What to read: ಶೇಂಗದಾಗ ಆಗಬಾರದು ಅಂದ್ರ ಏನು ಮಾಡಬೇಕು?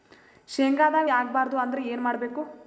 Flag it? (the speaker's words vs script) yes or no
no